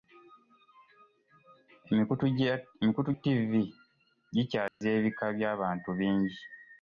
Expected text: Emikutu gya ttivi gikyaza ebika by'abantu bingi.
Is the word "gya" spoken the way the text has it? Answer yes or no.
no